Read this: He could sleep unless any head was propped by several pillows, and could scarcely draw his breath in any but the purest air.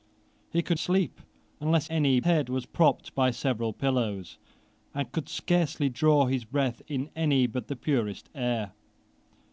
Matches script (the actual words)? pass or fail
pass